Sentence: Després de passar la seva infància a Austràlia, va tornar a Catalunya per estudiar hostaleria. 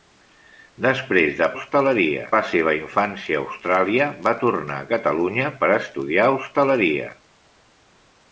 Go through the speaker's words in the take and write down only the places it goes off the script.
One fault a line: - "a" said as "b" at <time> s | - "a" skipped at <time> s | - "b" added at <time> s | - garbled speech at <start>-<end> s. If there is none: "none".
- "passar" said as "hostaleria" at 1.6 s